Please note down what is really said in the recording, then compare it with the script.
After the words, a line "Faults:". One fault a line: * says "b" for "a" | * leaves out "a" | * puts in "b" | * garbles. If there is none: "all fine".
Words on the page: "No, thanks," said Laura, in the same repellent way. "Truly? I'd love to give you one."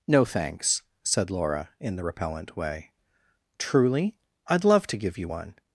"No, thanks," said Laura, in the repellent way. "Truly? I'd love to give you one."
Faults:
* leaves out "same"